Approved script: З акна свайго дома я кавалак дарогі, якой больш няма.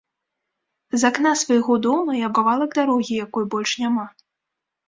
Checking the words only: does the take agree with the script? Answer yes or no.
yes